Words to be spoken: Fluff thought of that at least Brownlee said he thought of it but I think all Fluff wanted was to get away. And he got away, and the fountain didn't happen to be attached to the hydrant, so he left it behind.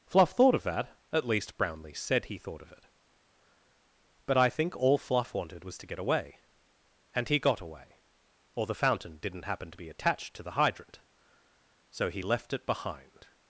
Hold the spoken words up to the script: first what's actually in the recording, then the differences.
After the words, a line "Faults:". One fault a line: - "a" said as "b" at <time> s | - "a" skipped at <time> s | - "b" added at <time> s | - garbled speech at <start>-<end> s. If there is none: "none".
Fluff thought of that at least Brownlee said he thought of it but I think all Fluff wanted was to get away. And he got away, or the fountain didn't happen to be attached to the hydrant, so he left it behind.
Faults:
- "and" said as "or" at 8.6 s